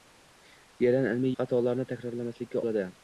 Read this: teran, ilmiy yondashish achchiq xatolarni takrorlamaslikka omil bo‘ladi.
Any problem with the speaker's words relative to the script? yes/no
yes